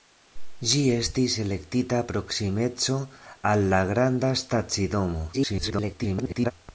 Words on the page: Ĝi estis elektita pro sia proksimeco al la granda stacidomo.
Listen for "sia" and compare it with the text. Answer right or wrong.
wrong